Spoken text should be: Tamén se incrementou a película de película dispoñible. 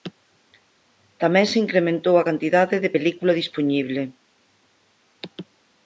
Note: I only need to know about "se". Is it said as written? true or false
true